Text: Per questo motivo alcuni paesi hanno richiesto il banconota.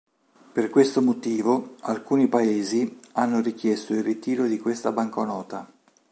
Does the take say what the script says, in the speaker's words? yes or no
no